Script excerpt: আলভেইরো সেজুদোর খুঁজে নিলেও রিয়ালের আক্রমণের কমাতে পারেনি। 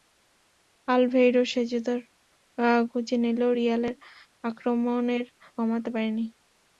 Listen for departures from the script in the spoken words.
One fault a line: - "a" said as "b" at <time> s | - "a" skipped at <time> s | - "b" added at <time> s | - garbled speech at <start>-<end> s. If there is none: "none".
none